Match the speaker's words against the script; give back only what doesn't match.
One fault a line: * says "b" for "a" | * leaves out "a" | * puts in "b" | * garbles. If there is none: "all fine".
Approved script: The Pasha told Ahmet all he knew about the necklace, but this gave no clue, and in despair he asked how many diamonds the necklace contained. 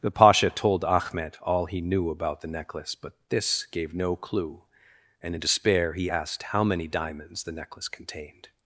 all fine